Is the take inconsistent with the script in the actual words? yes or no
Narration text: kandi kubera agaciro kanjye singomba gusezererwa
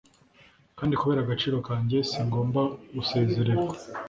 no